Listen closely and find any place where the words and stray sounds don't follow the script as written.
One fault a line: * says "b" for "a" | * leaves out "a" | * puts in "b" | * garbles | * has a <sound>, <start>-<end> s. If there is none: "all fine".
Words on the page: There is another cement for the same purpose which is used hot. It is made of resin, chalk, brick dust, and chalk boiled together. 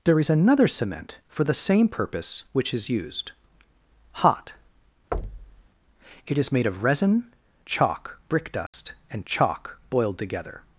* has a thud, 5.1-5.7 s
* has a dropout, 8.7-8.7 s